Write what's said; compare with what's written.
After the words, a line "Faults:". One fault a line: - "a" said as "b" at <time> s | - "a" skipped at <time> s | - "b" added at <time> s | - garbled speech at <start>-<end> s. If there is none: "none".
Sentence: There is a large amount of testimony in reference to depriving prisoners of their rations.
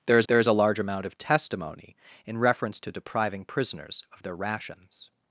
There is there is a large amount of testimony in reference to depriving prisoners of their rations.
Faults:
- "there is" added at 0.3 s